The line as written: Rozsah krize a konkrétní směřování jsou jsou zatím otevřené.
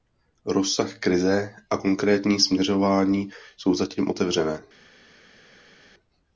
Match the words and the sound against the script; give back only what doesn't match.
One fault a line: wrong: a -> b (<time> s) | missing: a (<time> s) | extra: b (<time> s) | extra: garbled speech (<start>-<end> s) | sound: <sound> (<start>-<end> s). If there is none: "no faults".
missing: jsou (3.7 s)